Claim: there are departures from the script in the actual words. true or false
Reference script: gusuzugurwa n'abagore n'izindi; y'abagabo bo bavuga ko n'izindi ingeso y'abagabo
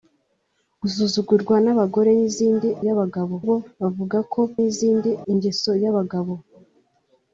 false